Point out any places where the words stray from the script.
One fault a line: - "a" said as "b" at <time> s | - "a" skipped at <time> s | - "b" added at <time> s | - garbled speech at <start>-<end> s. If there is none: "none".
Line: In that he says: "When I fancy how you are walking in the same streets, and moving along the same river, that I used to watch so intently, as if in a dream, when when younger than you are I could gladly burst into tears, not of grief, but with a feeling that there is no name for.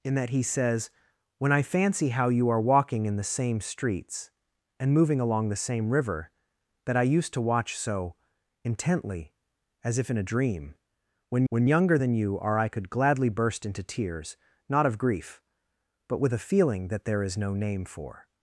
none